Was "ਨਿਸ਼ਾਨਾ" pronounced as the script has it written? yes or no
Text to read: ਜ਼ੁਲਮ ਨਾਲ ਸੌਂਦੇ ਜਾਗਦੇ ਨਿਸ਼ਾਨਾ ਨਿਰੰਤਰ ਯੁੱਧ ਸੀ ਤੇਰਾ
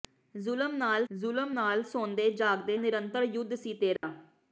no